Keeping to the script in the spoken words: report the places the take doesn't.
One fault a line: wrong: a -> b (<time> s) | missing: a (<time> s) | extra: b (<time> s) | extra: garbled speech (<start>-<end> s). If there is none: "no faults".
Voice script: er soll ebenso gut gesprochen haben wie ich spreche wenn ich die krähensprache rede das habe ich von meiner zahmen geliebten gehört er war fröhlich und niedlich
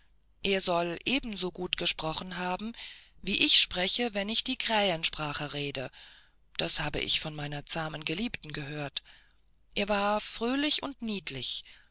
no faults